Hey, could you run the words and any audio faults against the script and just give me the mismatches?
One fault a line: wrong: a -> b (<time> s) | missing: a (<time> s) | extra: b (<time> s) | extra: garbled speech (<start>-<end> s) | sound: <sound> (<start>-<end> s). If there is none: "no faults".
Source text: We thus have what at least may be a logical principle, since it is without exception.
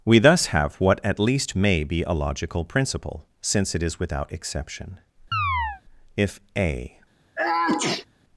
sound: chirp (5.3-5.8 s)
extra: If a (6.2 s)
sound: sneeze (7.3-8.1 s)